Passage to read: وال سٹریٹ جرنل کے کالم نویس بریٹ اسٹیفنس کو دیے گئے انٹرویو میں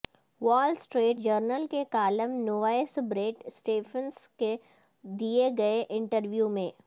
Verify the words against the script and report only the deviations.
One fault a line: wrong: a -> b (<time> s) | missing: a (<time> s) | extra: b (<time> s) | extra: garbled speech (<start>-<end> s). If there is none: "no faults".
no faults